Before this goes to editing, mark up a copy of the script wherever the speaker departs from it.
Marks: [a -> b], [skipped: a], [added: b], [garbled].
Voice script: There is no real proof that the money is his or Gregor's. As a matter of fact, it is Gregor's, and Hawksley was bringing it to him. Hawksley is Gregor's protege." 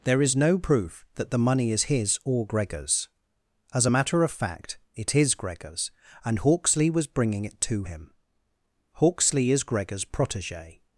There is no [skipped: real] proof that the money is his or Gregor's. As a matter of fact, it is Gregor's, and Hawksley was bringing it to him. Hawksley is Gregor's protege."